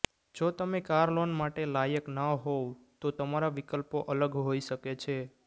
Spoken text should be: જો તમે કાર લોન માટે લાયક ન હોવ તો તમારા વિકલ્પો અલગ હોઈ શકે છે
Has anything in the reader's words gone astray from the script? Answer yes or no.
no